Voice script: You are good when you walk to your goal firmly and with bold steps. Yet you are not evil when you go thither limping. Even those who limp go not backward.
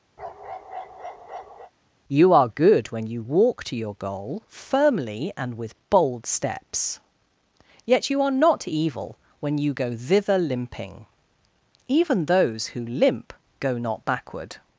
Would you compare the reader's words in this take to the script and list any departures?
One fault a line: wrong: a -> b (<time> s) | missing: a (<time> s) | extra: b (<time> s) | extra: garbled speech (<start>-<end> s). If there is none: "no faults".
no faults